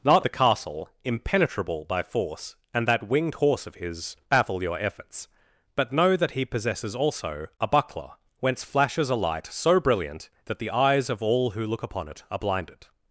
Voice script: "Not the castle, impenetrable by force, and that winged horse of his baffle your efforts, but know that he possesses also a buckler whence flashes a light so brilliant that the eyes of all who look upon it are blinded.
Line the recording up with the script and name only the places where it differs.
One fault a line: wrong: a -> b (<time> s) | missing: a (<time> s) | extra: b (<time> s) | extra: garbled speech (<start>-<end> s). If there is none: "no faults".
no faults